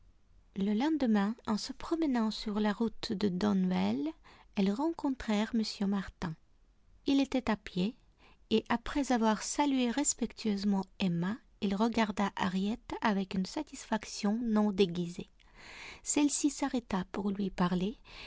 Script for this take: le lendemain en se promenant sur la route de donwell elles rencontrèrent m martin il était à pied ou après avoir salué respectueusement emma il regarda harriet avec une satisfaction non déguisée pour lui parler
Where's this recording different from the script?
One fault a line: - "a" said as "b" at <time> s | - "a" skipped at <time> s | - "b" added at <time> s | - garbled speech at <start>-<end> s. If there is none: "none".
- "ou" said as "et" at 8.5 s
- "celle ci s'arrêta" added at 16.0 s